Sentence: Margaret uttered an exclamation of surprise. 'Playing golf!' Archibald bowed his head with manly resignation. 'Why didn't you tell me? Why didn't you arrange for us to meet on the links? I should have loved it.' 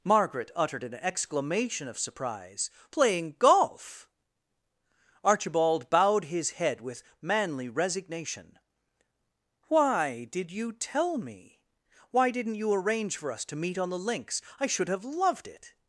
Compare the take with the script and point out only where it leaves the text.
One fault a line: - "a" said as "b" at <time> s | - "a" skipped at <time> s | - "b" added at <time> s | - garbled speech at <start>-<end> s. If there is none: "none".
- "didn't" said as "did" at 10.3 s